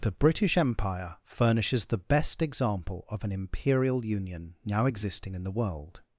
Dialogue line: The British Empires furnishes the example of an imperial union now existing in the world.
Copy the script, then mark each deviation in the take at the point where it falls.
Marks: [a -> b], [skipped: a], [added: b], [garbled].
The British [Empires -> Empire] furnishes the [added: best] example of an imperial union now existing in the world.